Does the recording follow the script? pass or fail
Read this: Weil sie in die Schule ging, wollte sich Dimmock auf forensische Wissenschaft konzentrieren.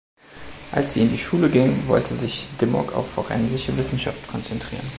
fail